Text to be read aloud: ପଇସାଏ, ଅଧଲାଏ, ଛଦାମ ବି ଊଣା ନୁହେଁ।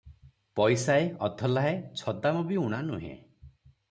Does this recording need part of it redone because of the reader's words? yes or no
no